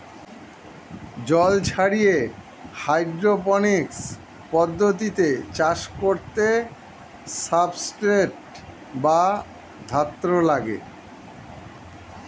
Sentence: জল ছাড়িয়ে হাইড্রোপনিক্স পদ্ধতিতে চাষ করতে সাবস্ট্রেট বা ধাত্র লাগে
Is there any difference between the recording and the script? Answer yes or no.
no